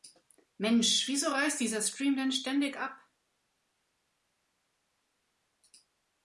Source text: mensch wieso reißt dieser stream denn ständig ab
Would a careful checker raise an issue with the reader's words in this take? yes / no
no